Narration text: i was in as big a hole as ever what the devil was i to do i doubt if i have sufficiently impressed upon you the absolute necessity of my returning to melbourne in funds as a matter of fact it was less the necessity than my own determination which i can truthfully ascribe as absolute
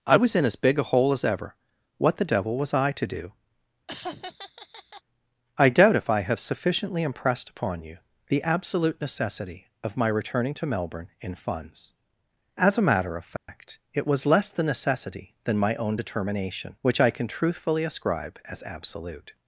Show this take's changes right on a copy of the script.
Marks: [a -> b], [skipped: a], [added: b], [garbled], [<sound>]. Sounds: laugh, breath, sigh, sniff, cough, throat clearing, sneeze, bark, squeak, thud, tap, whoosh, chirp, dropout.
i was in as big a hole as ever what the devil was i to do [laugh] i doubt if i have sufficiently impressed upon you the absolute necessity of my returning to melbourne in funds as a matter of fact [dropout] it was less the necessity than my own determination which i can truthfully ascribe as absolute